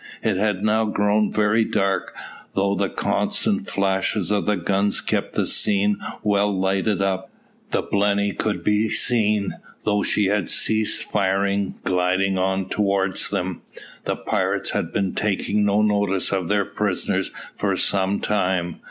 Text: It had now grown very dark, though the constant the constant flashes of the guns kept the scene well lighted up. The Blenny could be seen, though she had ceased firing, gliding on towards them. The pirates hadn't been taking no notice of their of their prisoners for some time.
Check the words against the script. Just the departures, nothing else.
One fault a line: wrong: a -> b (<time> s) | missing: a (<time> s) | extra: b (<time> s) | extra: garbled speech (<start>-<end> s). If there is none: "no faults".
missing: the constant (3.7 s)
wrong: hadn't -> had (14.7 s)
missing: of their (16.6 s)